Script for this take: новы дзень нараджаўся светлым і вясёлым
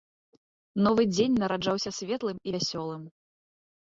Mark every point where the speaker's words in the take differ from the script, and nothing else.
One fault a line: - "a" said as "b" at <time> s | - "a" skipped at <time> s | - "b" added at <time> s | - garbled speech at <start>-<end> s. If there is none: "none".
none